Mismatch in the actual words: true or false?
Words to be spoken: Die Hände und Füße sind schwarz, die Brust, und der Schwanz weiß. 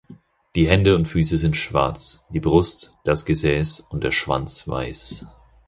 true